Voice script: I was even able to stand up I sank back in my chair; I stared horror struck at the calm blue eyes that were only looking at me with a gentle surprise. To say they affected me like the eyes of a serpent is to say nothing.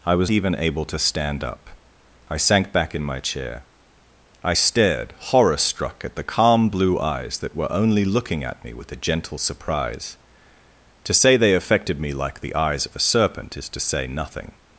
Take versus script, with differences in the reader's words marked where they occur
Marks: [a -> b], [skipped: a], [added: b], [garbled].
I was even able to stand up I sank back in my chair; I stared horror struck at the calm blue eyes that were only looking at me with a gentle surprise. To say they affected me like the eyes of a serpent is to say nothing.